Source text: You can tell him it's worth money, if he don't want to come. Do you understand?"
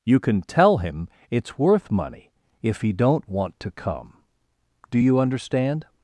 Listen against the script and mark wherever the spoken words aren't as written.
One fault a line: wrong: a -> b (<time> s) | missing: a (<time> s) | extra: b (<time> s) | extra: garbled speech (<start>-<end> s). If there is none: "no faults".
no faults